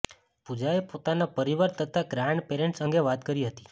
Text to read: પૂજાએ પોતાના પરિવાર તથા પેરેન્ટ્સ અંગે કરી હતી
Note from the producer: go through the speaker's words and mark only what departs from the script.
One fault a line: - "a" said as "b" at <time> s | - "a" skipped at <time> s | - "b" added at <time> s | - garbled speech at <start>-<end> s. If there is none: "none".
- "ગ્રાન્ડ" added at 2.1 s
- "વાત" added at 3.1 s